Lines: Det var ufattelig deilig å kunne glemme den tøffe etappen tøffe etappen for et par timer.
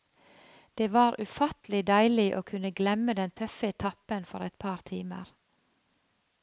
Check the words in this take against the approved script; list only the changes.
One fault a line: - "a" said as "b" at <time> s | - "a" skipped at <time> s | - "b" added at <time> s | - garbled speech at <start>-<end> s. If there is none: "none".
- "tøffe etappen" skipped at 4.3 s